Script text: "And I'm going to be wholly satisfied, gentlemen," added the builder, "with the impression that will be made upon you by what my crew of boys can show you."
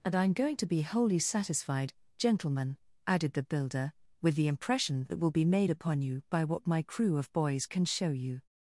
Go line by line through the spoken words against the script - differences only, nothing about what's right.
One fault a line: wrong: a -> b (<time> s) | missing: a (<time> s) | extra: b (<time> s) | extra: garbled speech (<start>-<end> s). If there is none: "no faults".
no faults